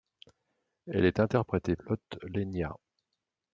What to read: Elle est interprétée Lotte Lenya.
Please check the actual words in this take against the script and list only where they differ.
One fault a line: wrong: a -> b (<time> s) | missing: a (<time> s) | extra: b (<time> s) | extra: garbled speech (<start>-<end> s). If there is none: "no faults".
no faults